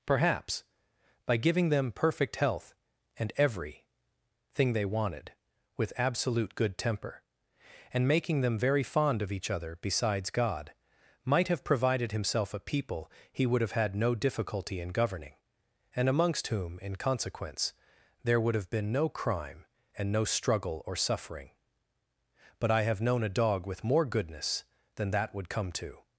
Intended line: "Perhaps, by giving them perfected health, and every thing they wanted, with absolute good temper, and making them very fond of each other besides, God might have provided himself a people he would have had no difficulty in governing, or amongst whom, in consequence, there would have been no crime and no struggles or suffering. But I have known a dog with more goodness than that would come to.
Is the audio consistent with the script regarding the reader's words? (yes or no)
no